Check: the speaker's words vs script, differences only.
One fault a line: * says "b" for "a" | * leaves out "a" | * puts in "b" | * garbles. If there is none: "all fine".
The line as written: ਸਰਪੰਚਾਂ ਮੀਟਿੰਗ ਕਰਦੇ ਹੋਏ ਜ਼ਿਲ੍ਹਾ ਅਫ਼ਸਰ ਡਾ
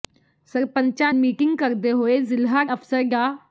all fine